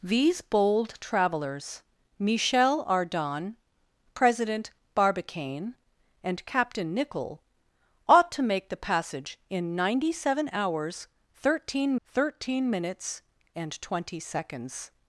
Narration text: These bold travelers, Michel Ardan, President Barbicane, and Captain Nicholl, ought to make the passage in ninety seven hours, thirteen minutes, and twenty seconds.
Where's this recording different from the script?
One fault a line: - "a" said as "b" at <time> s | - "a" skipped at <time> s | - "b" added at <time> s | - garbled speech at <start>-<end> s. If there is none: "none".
- "thirteen" added at 12.1 s